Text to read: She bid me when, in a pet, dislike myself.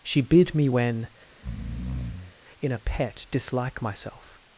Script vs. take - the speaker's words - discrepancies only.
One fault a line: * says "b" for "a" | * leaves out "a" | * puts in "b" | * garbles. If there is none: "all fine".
all fine